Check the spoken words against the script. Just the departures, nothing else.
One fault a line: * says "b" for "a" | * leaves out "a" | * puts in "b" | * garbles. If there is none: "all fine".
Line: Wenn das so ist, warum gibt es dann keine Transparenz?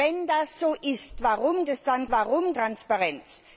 * leaves out "gibt"
* says "warum" for "keine"